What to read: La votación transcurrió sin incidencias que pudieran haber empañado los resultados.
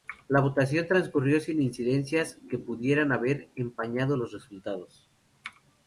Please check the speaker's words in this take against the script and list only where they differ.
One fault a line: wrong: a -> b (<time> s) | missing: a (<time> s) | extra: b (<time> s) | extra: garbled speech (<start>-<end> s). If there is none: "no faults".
no faults